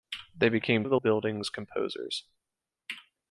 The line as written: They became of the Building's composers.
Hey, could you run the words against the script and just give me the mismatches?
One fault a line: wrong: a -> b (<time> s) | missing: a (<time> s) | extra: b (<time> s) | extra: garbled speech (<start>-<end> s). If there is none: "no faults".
no faults